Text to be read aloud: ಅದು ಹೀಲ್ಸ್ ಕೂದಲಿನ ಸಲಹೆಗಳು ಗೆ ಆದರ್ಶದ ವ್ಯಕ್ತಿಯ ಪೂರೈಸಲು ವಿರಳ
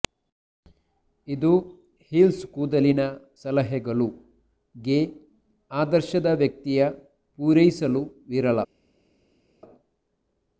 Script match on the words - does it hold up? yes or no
no